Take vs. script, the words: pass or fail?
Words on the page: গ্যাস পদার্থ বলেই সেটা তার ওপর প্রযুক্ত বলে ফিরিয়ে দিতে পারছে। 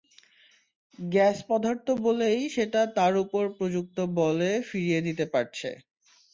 pass